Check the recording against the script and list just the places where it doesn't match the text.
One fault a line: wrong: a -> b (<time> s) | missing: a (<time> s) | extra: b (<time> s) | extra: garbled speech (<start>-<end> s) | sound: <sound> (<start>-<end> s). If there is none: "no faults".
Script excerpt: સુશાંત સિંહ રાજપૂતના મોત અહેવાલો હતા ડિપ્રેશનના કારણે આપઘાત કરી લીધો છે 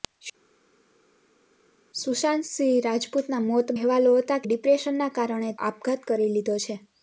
no faults